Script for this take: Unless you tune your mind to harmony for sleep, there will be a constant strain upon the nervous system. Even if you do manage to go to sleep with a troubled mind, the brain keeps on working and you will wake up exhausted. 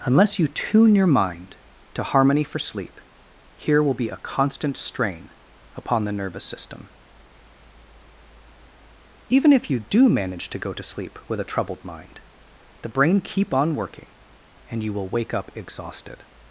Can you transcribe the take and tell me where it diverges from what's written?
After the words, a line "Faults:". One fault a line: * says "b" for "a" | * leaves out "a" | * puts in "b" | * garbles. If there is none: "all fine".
Unless you tune your mind to harmony for sleep, here will be a constant strain upon the nervous system. Even if you do manage to go to sleep with a troubled mind, the brain keep on working and you will wake up exhausted.
Faults:
* says "here" for "there"
* says "keep" for "keeps"